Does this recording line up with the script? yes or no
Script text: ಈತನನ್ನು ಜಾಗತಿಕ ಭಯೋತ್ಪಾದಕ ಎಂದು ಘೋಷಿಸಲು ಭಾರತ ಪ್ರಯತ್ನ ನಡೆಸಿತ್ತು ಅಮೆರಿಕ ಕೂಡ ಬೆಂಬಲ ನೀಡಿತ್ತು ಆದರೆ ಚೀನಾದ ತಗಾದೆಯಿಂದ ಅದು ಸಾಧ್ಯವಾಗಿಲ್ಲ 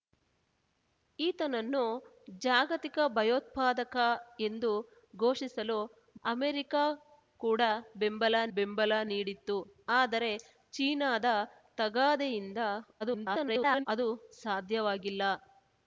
no